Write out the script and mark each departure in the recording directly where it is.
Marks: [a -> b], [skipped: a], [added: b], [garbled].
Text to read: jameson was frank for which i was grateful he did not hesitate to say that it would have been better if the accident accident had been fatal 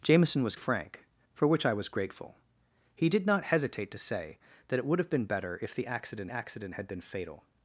jameson was frank for which i was grateful he did not hesitate to say that it would have been better if the accident accident had been fatal